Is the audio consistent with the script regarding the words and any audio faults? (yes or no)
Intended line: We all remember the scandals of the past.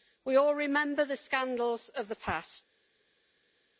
yes